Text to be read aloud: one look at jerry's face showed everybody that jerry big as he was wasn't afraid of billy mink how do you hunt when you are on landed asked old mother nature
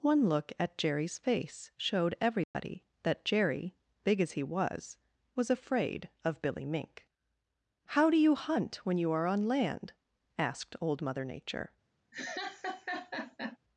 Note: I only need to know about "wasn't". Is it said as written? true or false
false